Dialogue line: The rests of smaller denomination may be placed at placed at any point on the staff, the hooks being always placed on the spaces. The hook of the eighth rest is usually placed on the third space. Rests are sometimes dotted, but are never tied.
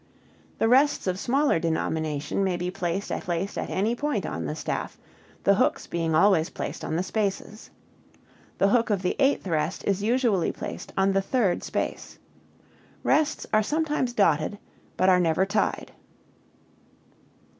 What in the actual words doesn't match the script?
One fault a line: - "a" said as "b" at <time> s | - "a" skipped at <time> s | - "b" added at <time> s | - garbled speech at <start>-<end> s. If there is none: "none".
none